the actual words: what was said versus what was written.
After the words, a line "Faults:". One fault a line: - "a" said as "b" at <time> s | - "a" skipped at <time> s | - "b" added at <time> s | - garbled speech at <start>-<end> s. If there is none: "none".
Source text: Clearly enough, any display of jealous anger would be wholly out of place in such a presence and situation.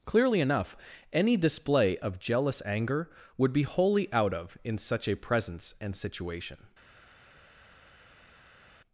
Clearly enough, any display of jealous anger would be wholly out of in such a presence and situation.
Faults:
- "place" skipped at 4.6 s